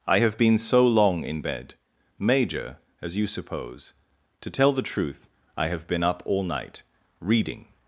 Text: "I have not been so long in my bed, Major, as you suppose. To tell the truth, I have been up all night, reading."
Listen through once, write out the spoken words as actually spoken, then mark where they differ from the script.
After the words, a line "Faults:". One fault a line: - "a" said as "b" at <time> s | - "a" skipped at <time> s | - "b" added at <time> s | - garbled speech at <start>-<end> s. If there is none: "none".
"I have been so long in bed, Major, as you suppose. To tell the truth, I have been up all night, reading."
Faults:
- "not" skipped at 0.4 s
- "my" skipped at 1.4 s